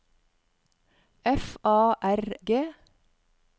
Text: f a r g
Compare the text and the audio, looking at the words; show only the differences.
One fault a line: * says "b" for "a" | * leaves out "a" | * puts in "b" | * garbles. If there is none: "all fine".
all fine